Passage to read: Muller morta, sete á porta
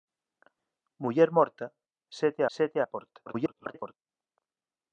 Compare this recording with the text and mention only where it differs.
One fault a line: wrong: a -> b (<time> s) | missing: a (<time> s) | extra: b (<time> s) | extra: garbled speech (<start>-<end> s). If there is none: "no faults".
extra: sete (2.6 s)
extra: garbled speech (3.3-3.9 s)